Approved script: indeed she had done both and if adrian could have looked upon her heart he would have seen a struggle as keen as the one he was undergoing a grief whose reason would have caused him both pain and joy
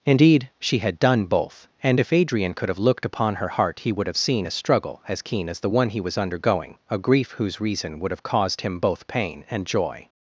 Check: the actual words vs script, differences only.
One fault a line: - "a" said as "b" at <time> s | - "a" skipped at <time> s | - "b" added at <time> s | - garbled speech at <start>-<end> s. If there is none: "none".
none